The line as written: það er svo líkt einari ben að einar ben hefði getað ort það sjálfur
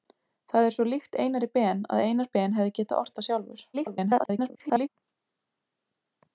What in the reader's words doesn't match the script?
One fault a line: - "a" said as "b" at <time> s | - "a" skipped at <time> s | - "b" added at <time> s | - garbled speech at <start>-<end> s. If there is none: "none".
- garbled speech at 3.7-4.9 s